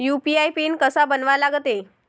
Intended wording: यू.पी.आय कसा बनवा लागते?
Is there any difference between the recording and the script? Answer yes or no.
yes